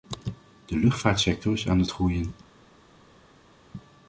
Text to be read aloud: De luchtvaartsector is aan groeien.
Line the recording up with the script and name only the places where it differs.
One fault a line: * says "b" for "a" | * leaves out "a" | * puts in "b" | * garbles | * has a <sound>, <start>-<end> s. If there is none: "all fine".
* puts in "het"